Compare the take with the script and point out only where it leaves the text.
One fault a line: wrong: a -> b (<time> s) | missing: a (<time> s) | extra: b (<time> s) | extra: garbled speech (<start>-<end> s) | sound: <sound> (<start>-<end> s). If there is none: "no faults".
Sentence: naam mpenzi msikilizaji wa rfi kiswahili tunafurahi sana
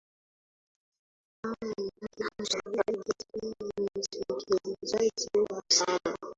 extra: garbled speech (2.0-3.3 s)
missing: rfi kiswahili tunafurahi (5.6 s)